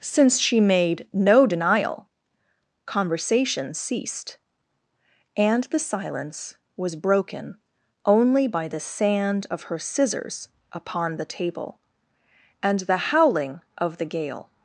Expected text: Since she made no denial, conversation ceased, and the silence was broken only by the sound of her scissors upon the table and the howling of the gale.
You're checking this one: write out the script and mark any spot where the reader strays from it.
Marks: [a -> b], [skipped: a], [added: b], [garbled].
Since she made no denial, conversation ceased, and the silence was broken only by the [sound -> sand] of her scissors upon the table and the howling of the gale.